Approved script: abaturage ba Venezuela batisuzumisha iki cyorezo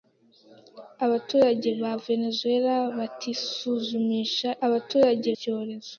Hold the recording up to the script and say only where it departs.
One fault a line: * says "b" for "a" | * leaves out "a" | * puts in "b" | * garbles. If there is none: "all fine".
* says "abaturage" for "iki"